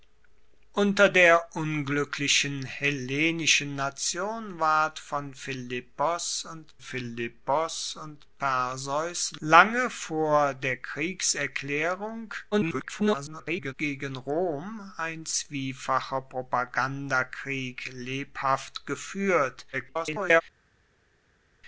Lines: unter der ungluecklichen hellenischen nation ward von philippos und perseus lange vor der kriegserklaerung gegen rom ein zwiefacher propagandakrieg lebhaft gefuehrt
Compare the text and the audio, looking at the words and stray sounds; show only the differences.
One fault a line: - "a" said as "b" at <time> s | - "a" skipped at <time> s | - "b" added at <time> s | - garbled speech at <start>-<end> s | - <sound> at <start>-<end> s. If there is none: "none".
- "philippos und" added at 6.8 s
- garbled speech at 12.5-13.7 s
- garbled speech at 19.7-20.4 s